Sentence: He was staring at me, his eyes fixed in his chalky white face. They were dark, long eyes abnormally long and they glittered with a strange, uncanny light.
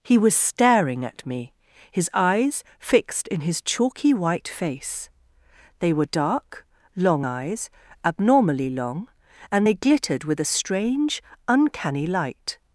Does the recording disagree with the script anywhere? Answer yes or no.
no